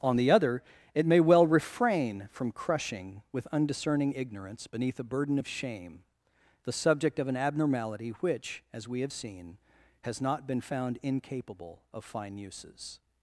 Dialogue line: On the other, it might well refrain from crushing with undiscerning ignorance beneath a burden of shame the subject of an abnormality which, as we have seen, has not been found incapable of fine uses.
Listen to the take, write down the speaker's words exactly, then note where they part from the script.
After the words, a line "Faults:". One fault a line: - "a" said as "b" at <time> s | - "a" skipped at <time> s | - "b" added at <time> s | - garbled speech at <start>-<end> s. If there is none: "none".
On the other, it may well refrain from crushing with undiscerning ignorance beneath a burden of shame the subject of an abnormality which, as we have seen, has not been found incapable of fine uses.
Faults:
- "might" said as "may" at 1.1 s